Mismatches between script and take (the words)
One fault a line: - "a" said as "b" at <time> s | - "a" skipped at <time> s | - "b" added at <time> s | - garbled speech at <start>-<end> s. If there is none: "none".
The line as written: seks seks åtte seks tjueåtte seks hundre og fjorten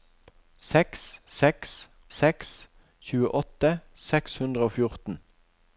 - "åtte" skipped at 1.7 s